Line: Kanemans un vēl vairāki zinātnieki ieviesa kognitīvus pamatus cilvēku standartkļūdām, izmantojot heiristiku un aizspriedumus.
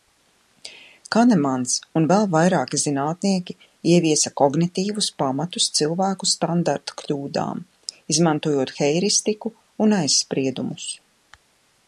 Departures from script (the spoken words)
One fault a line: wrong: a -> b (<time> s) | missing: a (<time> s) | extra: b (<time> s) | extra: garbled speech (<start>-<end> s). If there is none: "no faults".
no faults